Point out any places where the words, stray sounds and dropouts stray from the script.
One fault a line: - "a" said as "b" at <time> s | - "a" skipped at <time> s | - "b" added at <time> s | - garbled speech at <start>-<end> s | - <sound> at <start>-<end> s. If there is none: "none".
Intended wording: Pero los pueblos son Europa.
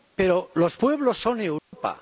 - dropout at 1.6-1.7 s